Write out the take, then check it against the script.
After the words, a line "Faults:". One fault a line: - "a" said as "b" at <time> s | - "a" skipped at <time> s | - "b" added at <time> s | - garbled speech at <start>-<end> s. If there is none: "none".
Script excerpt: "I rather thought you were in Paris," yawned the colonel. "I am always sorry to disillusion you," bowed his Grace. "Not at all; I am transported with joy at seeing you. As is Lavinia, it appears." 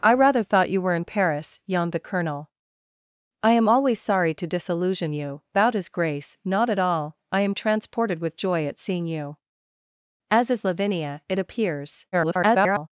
"I rather thought you were in Paris," yawned the colonel. "I am always sorry to disillusion you," bowed his Grace. "Not at all; I am transported with joy at seeing you. As is Lavinia, it appears." [garbled]
Faults:
- garbled speech at 12.1-12.9 s